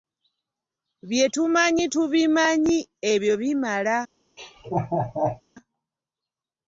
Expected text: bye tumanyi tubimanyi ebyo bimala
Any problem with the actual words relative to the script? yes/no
no